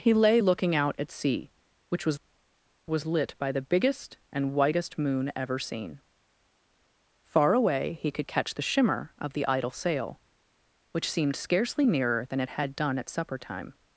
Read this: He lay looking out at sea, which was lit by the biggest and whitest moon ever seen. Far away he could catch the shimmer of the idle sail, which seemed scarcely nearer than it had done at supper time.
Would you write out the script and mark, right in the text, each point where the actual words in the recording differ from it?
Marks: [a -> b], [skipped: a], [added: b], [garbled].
He lay looking out at sea, which was [added: was] lit by the biggest and whitest moon ever seen. Far away he could catch the shimmer of the idle sail, which seemed scarcely nearer than it had done at supper time.